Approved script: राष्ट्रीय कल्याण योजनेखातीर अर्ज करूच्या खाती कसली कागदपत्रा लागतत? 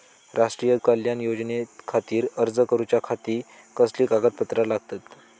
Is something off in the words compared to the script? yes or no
no